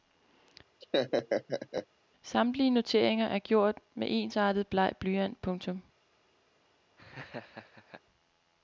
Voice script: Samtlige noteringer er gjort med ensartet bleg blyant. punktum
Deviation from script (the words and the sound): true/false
true